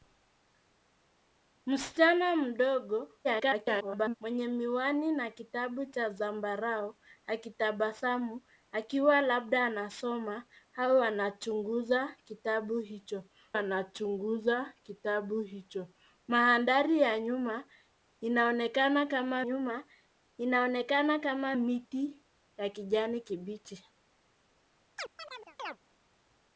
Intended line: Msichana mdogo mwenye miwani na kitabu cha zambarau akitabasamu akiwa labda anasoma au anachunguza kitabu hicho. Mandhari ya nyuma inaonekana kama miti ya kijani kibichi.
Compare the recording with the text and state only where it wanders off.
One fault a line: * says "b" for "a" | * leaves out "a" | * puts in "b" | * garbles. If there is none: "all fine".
* garbles
* puts in "anachunguza kitabu hicho"
* puts in "nyuma inaonekana kama"